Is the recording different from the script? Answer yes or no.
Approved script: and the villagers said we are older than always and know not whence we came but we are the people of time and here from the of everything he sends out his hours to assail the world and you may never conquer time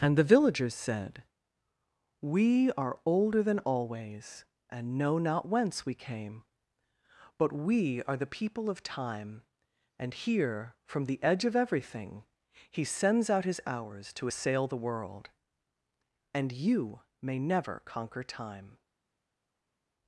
yes